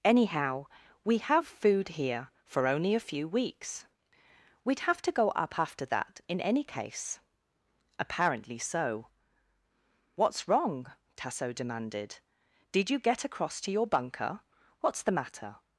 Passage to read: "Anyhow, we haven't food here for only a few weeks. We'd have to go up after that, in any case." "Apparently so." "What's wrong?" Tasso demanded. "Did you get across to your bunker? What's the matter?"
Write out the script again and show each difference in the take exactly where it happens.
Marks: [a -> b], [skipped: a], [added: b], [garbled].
"Anyhow, we [haven't -> have] food here for only a few weeks. We'd have to go up after that, in any case." "Apparently so." "What's wrong?" Tasso demanded. "Did you get across to your bunker? What's the matter?"